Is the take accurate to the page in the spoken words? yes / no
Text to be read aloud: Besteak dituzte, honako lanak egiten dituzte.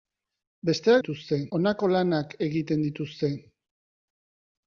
yes